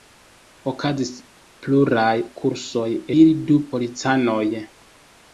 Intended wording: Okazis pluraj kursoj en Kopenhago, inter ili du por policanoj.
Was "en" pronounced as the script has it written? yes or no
no